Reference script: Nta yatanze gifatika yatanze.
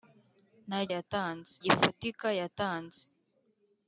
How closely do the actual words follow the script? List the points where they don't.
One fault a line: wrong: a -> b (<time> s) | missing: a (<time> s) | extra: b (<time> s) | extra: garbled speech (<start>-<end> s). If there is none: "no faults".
no faults